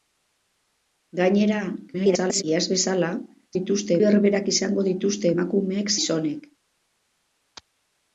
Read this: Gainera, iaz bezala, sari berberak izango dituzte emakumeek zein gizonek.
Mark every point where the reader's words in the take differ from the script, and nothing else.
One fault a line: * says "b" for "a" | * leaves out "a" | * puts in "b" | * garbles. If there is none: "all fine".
* garbles
* says "dituzte" for "sari"
* leaves out "zein"